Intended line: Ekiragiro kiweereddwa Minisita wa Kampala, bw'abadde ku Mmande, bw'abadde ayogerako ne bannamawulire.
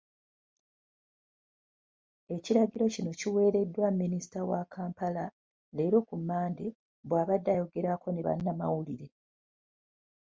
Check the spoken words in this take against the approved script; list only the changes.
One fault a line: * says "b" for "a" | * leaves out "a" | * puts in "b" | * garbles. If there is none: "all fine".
* puts in "kino"
* says "leero" for "bw'abadde"